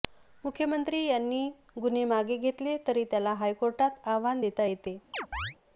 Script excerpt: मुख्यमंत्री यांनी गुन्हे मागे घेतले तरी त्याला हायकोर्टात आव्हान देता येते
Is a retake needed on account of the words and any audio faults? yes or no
yes